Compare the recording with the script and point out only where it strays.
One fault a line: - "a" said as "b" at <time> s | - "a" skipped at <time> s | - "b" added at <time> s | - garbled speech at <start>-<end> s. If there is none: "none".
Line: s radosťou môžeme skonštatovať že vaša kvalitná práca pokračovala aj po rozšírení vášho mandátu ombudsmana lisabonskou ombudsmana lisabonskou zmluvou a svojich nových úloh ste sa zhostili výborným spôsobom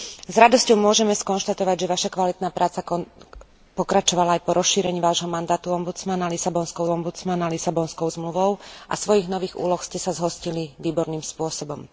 none